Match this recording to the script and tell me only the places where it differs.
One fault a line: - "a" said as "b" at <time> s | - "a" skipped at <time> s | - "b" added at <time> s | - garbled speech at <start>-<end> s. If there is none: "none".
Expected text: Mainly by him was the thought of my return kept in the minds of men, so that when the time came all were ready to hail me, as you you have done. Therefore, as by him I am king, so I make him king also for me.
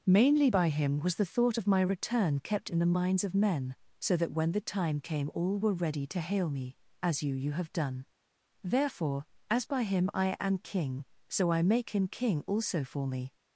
none